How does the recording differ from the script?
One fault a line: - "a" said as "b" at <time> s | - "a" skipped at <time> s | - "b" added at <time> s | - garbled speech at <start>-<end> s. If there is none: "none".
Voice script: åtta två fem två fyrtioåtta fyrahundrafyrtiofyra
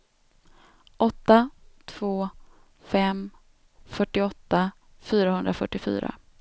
- "två" skipped at 3.3 s